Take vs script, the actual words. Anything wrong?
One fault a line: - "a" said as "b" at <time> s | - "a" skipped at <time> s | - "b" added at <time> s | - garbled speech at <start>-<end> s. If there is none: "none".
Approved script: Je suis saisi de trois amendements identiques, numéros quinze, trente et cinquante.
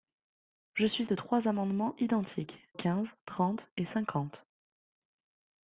- "saisi" skipped at 1.1 s
- "numéros" skipped at 2.7 s